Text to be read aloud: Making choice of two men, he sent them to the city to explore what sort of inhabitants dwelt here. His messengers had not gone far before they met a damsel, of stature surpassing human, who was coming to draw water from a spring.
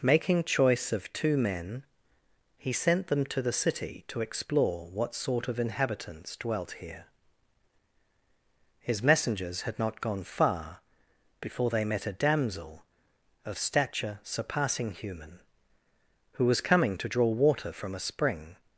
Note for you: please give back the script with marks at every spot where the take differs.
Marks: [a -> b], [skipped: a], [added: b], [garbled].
Making choice of two men, he sent them to the city to explore what sort of inhabitants dwelt here. His messengers had not gone far before they met a damsel, of stature surpassing human, who was coming to draw water from a spring.